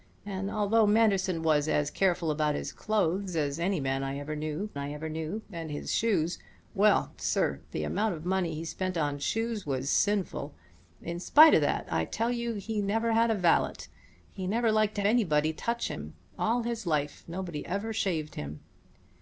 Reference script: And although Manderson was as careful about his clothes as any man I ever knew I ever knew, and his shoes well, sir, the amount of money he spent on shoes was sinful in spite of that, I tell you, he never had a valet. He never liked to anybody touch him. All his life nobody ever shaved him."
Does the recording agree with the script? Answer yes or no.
yes